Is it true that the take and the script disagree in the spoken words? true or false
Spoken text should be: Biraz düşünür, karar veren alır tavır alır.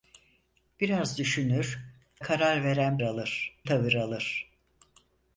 false